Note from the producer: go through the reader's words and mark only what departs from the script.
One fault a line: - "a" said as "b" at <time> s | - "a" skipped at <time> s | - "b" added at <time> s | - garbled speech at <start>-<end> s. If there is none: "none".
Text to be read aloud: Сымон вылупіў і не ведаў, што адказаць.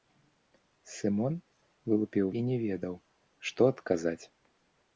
none